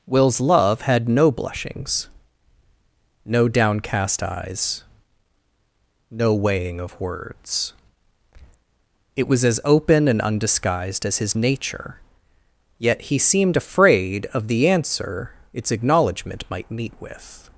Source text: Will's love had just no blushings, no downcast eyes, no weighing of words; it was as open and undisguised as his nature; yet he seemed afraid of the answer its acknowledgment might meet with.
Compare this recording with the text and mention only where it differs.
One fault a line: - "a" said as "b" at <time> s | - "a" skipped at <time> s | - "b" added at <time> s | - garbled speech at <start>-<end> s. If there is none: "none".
- "just" skipped at 1.1 s